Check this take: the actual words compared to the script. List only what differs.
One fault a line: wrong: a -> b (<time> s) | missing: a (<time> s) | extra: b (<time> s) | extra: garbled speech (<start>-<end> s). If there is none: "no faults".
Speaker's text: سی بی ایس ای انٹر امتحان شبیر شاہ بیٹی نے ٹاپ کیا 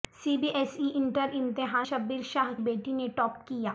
no faults